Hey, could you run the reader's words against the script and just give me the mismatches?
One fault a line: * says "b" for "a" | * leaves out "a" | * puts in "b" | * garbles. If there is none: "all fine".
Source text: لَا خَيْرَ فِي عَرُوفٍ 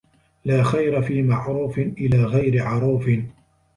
* puts in "مَعْرُوفٍ إلَى غَيْرِ"